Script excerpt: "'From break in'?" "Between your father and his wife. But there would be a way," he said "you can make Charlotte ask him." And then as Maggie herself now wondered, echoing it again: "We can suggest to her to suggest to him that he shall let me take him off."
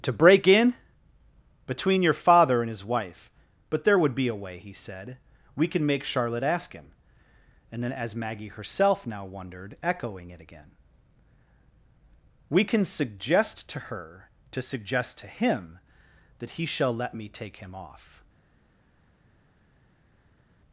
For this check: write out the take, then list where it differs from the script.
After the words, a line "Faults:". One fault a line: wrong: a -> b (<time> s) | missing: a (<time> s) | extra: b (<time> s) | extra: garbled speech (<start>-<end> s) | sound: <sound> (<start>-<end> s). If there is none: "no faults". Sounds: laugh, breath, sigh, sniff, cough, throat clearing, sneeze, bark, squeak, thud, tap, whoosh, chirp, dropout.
"'To break in'?" "Between your father and his wife. But there would be a way," he said "we can make Charlotte ask him." And then as Maggie herself now wondered, echoing it again: "We can suggest to her to suggest to him that he shall let me take him off."
Faults:
wrong: From -> To (0.0 s)
wrong: you -> we (5.5 s)